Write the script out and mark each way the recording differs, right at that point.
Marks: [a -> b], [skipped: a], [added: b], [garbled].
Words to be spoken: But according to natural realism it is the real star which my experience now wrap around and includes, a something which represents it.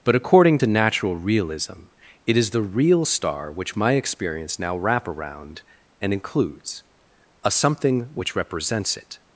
But according to natural realism it is the real star which my experience now wrap around and includes, a something which represents it.